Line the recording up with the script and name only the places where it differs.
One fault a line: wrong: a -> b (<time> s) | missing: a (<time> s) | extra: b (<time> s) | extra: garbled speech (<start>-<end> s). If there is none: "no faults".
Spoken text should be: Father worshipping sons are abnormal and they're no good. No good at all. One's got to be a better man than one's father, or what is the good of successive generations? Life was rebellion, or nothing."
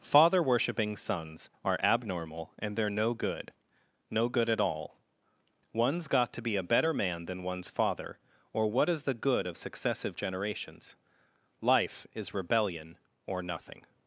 wrong: was -> is (12.1 s)